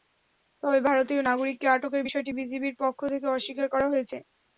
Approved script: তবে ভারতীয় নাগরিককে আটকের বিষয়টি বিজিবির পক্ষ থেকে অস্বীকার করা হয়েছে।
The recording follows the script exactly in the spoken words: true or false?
true